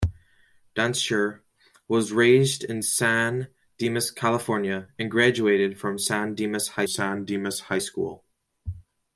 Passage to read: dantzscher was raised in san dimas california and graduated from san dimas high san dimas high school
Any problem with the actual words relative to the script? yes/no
no